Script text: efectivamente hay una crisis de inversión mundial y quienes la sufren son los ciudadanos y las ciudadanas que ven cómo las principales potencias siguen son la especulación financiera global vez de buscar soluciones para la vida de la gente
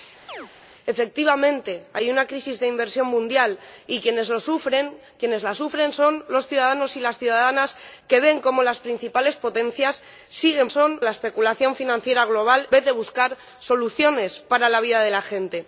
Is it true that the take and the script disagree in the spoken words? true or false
false